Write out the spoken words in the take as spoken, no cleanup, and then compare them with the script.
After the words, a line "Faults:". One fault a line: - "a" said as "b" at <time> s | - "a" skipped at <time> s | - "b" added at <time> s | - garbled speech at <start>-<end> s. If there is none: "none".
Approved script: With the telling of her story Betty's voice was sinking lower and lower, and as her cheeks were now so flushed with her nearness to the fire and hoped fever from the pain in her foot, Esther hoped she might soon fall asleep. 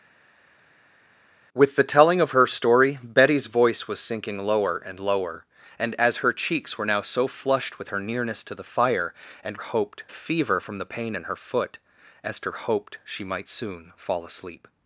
With the telling of her story Betty's voice was sinking lower and lower, and as her cheeks were now so flushed with her nearness to the fire and hoped fever from the pain in her foot, Esther hoped she might soon fall asleep.
Faults:
none